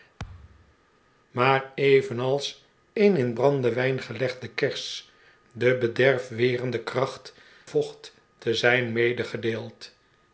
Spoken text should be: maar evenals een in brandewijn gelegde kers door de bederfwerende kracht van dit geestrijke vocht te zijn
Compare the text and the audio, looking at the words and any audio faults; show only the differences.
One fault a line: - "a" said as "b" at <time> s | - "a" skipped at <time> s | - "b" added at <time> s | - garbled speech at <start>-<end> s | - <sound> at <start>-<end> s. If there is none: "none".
- thud at 0.2-0.7 s
- "door" skipped at 5.1 s
- "van dit geestrijke" skipped at 7.3 s